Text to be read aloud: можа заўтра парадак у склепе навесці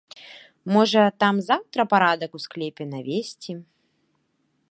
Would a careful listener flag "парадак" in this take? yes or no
no